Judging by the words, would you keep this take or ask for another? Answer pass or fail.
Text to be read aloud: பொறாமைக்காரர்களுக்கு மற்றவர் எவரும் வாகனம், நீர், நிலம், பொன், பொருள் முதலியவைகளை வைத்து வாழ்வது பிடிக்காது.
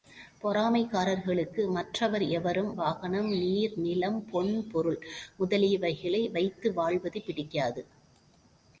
pass